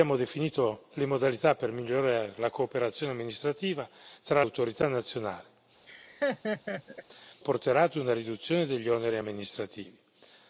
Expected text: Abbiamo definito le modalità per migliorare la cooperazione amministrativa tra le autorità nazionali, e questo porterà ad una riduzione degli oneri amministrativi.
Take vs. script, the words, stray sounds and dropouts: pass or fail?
fail